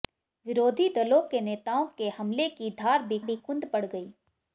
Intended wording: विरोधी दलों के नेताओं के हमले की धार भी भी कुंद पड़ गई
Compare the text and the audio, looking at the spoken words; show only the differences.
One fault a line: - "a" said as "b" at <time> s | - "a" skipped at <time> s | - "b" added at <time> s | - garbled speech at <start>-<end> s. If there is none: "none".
none